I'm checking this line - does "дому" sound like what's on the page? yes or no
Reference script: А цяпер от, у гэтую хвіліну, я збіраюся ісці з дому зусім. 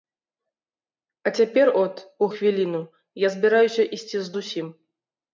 no